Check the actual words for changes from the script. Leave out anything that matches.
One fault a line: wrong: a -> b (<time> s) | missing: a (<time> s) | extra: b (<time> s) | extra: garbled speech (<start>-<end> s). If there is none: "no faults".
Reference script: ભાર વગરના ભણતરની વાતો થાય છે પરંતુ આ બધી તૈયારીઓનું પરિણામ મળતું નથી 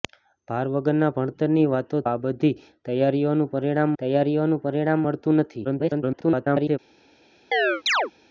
wrong: થાય છે પરંતુ આ બધી -> આ બધી તૈયારીઓનું પરિણામ (2.1 s)
extra: garbled speech (5.6-6.8 s)